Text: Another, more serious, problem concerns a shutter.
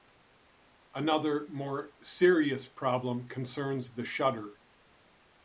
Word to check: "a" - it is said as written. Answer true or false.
false